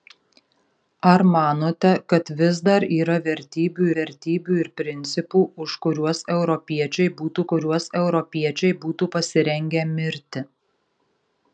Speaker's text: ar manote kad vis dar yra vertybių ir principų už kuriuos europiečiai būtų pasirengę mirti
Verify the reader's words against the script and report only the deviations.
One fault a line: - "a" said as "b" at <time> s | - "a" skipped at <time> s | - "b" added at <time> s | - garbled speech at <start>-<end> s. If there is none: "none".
- "vertybių" added at 4.0 s
- "kuriuos europiečiai būtų" added at 7.5 s